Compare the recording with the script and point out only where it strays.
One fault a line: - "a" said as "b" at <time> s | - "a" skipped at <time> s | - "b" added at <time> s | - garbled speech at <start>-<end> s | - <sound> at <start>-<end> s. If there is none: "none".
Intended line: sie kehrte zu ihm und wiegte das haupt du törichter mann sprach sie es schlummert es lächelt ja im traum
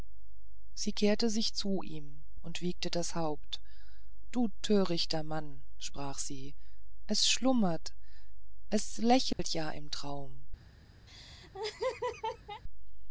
- "sich" added at 1.3 s
- dropout at 9.3-9.4 s
- laugh at 11.1-12.6 s